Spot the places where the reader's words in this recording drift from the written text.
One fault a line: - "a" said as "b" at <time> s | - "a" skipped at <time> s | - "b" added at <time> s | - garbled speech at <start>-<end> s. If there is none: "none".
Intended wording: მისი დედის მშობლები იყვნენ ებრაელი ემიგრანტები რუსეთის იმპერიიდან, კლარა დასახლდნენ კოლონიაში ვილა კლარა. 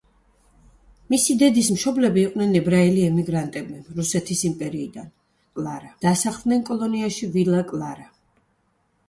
none